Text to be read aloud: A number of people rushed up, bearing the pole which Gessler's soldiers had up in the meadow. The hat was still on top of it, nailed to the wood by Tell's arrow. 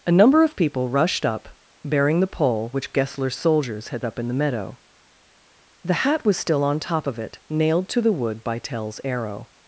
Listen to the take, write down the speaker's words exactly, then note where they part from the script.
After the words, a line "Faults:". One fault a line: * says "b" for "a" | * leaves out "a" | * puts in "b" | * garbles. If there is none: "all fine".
A number of people rushed up, bearing the pole which Gessler's soldiers had up in the meadow. The hat was still on top of it, nailed to the wood by Tell's arrow.
Faults:
all fine